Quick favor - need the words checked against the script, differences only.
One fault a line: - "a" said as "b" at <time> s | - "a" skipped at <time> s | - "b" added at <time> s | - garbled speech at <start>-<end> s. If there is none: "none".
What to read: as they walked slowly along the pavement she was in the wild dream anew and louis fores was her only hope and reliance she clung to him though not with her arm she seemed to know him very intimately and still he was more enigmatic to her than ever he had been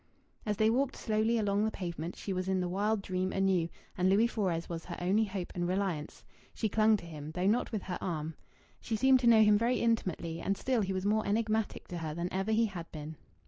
none